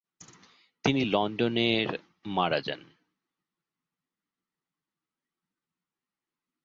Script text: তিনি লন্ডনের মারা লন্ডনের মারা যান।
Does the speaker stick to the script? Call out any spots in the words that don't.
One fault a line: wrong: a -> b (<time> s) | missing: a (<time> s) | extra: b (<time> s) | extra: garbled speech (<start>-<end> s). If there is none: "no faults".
missing: লন্ডনের মারা (2.6 s)